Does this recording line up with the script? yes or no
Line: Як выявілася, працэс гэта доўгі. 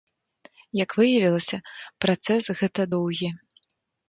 yes